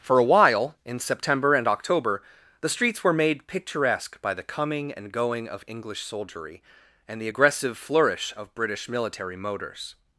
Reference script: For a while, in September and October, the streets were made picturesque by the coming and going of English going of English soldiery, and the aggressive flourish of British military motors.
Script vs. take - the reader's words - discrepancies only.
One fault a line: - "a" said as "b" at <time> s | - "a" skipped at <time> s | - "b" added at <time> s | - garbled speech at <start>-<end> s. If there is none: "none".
- "going of English" skipped at 6.0 s